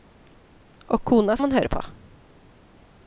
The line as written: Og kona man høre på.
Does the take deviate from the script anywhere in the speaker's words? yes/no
no